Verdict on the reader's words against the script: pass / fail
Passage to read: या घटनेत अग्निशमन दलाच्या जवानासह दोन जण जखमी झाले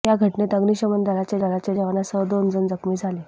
fail